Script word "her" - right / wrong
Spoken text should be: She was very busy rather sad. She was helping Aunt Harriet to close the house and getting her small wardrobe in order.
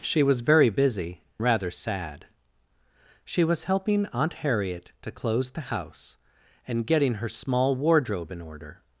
right